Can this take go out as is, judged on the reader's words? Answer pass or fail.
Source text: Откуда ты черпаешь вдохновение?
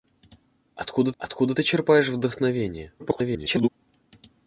fail